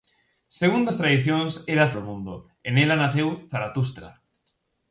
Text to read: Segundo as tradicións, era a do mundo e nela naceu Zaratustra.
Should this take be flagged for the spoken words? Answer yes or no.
no